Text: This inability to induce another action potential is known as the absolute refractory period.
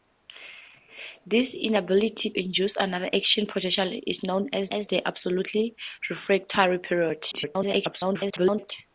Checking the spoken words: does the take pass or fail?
fail